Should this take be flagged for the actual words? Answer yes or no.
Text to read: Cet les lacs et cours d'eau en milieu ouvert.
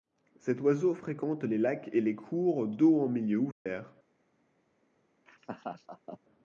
yes